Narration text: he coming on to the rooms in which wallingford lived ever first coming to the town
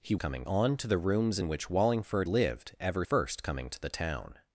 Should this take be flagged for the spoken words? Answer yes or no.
no